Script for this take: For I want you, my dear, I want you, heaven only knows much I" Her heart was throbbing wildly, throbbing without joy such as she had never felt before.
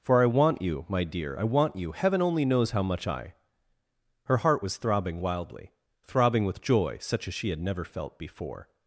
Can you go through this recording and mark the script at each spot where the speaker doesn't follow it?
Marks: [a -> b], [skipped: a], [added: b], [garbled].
For I want you, my dear, I want you, heaven only knows [added: how] much I" Her heart was throbbing wildly, throbbing [without -> with] joy such as she had never felt before.